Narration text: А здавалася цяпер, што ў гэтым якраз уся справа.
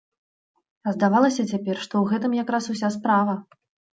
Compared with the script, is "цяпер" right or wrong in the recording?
right